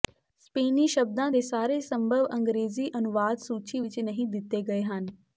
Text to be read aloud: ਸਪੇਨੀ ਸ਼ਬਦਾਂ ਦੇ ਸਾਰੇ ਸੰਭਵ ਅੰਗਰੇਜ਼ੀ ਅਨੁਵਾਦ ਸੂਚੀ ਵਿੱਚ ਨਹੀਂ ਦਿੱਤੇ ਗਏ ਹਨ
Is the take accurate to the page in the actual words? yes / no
yes